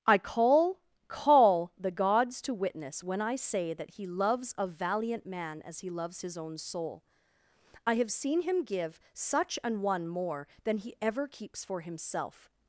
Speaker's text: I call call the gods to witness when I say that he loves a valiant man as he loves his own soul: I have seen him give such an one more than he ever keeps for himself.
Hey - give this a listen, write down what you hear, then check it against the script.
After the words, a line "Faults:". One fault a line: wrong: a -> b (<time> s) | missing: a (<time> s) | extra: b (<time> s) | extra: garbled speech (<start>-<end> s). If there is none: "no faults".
I call call the gods to witness when I say that he loves a valiant man as he loves his own soul: I have seen him give such an one more than he ever keeps for himself.
Faults:
no faults